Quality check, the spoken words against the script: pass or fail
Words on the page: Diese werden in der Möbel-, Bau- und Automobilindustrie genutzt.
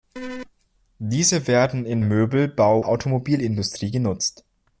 fail